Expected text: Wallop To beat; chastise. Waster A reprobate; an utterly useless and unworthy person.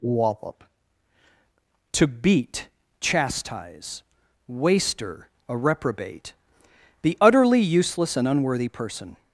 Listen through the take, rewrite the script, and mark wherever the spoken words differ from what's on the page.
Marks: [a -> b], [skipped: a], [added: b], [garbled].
Wallop To beat; chastise. Waster A reprobate; [an -> the] utterly useless and unworthy person.